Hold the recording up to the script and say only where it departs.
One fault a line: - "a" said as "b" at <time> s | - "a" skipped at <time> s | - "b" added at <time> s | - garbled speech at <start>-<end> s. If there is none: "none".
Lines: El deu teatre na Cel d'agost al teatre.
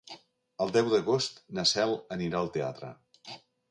- "teatre" said as "d'agost" at 0.9 s
- "d'agost" said as "anirà" at 2.2 s